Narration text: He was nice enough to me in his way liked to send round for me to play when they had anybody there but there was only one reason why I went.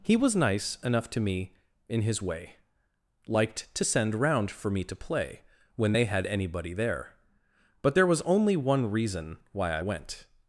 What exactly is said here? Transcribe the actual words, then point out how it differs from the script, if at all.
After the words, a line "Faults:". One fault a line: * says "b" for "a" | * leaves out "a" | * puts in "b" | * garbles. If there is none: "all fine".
He was nice enough to me in his way liked to send round for me to play when they had anybody there but there was only one reason why I went.
Faults:
all fine